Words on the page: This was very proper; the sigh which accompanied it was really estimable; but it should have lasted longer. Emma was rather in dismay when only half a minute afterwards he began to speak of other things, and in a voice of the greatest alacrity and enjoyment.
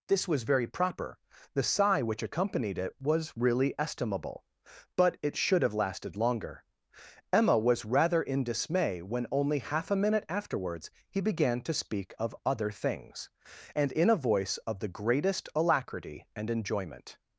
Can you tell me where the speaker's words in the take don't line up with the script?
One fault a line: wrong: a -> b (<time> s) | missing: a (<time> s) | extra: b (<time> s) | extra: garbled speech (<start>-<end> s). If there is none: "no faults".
no faults